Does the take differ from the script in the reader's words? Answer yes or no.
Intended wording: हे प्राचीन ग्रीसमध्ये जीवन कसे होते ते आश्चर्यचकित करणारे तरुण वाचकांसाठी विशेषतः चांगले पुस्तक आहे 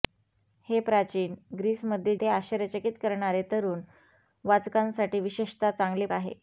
yes